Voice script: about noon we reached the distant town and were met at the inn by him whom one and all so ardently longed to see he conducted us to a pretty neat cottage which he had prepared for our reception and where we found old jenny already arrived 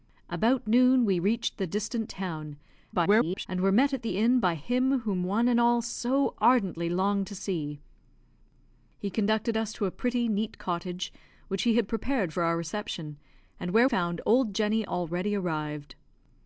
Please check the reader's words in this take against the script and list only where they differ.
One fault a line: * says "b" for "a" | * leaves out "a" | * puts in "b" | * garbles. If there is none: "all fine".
* garbles
* leaves out "we"